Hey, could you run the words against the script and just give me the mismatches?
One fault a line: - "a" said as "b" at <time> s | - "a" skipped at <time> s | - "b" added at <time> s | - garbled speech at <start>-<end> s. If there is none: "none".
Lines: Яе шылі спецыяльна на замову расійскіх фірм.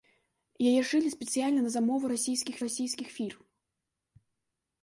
- "расійскіх" added at 2.6 s